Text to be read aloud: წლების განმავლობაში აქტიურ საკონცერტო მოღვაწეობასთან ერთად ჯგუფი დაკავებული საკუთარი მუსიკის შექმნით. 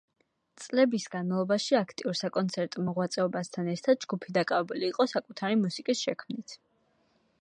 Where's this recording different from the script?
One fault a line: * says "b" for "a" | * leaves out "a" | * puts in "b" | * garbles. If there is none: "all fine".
* puts in "იყო"